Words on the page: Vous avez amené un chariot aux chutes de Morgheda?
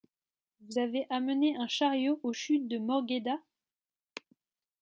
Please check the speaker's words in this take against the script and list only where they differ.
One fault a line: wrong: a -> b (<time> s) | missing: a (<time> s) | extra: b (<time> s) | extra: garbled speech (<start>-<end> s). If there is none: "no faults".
no faults